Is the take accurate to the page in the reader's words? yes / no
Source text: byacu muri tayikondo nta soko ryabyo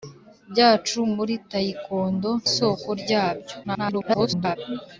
no